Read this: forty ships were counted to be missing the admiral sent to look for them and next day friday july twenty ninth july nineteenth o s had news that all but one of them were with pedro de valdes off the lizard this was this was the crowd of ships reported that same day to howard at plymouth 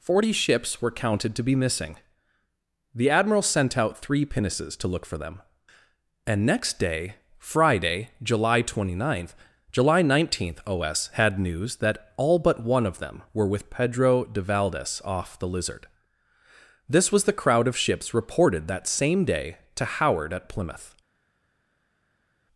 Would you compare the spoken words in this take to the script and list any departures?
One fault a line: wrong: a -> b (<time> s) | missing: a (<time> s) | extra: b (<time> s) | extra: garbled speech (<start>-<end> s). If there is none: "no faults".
extra: out three pinnaces (3.8 s)
missing: this was (17.2 s)